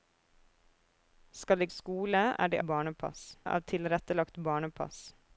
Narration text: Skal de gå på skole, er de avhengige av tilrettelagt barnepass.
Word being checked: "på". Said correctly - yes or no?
no